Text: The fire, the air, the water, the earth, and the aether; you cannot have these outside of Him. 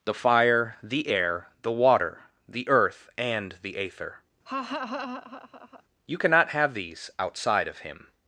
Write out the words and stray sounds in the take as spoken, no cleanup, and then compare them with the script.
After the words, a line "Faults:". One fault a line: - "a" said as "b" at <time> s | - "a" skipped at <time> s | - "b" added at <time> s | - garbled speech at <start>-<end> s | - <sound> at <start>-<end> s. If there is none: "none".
The fire, the air, the water, the earth, and the aether; you cannot have these outside of Him.
Faults:
- laugh at 4.5-5.8 s